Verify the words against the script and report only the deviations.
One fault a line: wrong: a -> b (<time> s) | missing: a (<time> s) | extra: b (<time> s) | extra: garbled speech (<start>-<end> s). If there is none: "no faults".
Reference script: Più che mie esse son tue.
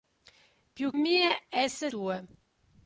missing: che (0.9 s)
missing: son (1.9 s)